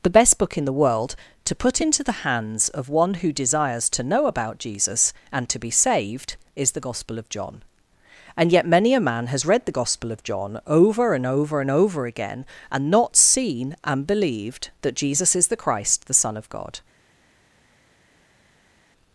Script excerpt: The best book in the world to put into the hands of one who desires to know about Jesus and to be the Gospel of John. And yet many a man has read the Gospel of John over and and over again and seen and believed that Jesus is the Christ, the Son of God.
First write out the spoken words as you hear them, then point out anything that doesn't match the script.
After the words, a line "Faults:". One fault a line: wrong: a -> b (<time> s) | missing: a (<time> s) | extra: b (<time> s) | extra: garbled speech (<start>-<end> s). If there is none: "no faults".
The best book in the world to put into the hands of one who desires to know about Jesus and to be saved is the Gospel of John. And yet many a man has read the Gospel of John over and over and over again and not seen and believed that Jesus is the Christ, the Son of God.
Faults:
extra: saved is (5.7 s)
extra: over (11.3 s)
extra: not (12.9 s)